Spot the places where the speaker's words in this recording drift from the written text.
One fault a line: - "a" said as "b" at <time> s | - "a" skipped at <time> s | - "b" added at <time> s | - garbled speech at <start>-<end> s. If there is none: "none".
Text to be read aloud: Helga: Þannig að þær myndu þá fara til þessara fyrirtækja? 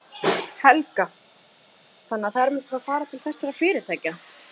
none